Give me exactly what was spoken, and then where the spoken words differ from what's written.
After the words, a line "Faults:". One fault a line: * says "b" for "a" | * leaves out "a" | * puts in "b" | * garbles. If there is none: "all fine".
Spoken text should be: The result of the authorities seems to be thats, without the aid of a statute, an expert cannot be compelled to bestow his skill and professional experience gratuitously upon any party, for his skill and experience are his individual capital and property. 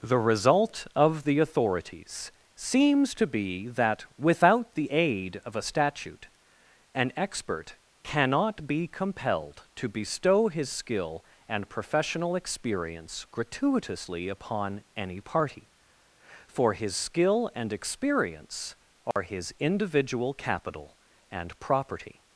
The result of the authorities seems to be that, without the aid of a statute, an expert cannot be compelled to bestow his skill and professional experience gratuitously upon any party, for his skill and experience are his individual capital and property.
Faults:
* says "that" for "thats"